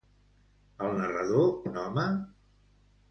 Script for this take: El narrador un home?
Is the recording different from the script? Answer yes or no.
no